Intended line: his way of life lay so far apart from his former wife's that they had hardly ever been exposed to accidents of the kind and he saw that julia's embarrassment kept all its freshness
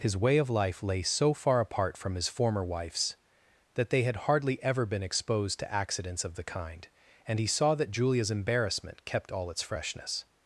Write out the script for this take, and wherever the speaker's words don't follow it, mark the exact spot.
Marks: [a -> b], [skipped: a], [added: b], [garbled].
his way of life lay so far apart from his former wife's that they had hardly ever been exposed to accidents of the kind and he saw that julia's embarrassment kept all its freshness